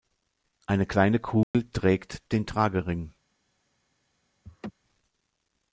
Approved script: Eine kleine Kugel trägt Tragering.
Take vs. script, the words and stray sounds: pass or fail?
fail